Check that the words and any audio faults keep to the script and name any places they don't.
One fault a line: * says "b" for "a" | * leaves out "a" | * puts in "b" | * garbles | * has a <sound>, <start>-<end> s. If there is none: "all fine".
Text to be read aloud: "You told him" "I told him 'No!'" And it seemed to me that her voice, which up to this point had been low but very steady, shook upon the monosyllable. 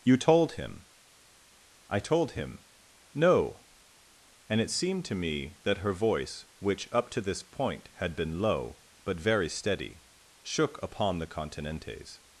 * says "continentes" for "monosyllable"